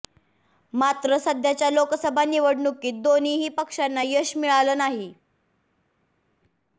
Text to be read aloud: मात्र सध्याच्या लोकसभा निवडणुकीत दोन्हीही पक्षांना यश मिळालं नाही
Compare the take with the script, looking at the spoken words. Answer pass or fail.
pass